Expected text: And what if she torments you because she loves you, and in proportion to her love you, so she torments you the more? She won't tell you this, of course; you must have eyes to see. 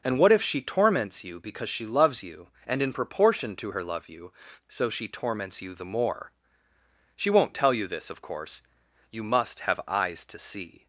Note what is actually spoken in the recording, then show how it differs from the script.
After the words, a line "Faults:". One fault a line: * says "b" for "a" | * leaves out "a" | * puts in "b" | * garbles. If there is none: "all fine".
And what if she torments you because she loves you, and in proportion to her love you, so she torments you the more? She won't tell you this, of course; you must have eyes to see.
Faults:
all fine